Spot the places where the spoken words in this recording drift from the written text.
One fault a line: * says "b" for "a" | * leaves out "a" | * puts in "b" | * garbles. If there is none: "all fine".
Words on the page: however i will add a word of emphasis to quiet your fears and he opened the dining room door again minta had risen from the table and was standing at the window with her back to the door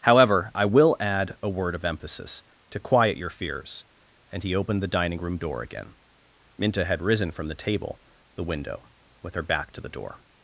* leaves out "and was standing at"